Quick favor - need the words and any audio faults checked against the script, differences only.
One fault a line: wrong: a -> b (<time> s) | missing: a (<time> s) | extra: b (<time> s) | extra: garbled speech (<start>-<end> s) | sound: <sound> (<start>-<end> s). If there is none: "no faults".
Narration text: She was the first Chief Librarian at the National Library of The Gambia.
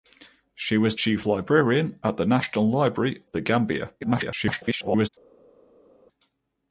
missing: the first (0.9 s)
missing: of (3.2 s)
extra: garbled speech (4.0-5.1 s)